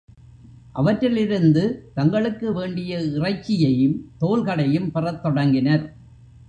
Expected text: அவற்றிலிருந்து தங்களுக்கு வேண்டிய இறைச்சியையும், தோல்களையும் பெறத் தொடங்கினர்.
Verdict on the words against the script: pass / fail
pass